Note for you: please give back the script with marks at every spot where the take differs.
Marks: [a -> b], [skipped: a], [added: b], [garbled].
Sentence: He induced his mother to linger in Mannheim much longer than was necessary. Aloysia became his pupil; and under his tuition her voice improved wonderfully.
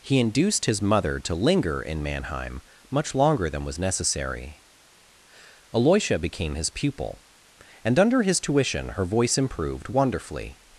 He induced his mother to linger in Mannheim much longer than was necessary. Aloysia became his pupil; and under his tuition her voice improved wonderfully.